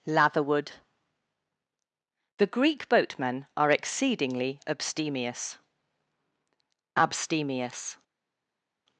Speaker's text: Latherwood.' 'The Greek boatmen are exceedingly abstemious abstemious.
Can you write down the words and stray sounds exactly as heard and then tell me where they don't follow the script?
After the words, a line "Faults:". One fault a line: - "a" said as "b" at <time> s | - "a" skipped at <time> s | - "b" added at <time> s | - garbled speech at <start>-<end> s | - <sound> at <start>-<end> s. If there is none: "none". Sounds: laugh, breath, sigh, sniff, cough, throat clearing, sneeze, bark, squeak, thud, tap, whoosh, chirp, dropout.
Latherwood.' 'The Greek boatmen are exceedingly abstemious abstemious.
Faults:
none